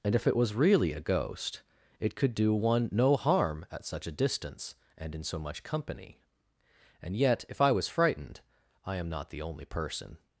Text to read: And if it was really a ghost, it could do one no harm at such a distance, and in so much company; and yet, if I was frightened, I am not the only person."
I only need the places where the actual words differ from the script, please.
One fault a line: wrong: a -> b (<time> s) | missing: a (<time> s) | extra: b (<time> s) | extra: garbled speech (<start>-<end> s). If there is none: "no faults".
no faults